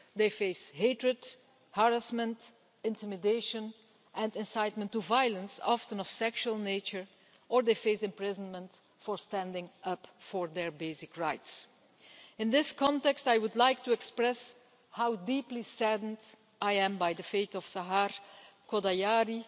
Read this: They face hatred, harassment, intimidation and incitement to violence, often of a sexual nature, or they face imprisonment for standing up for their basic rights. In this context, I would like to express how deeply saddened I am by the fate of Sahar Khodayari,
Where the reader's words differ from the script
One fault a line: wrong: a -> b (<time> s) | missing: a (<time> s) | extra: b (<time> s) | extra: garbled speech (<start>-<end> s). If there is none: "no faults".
no faults